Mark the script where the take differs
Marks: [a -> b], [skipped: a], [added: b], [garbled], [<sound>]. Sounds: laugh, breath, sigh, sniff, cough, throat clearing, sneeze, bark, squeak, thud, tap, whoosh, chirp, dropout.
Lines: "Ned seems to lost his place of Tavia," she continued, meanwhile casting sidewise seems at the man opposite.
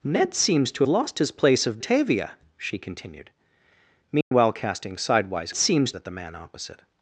"Ned seems to lost his place of Tavia," she continued, meanwhile [dropout] casting sidewise seems at the man opposite.